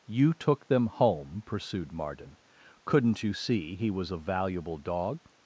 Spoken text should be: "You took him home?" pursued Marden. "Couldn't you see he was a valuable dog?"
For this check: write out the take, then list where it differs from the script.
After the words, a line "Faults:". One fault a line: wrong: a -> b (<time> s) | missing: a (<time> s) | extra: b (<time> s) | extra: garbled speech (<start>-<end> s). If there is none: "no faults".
"You took them home?" pursued Marden. "Couldn't you see he was a valuable dog?"
Faults:
wrong: him -> them (0.7 s)